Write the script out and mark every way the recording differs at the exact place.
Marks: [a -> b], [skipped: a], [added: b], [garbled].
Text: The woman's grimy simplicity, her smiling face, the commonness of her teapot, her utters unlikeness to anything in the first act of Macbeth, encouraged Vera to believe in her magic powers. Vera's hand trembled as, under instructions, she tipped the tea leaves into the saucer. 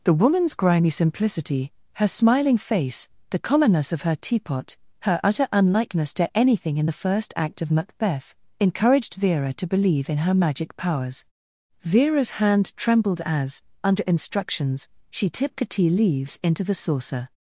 The woman's grimy simplicity, her smiling face, the commonness of her teapot, her [utters -> utter] unlikeness to anything in the first act of Macbeth, encouraged Vera to believe in her magic powers. Vera's hand trembled as, under instructions, she tipped the tea leaves into the saucer.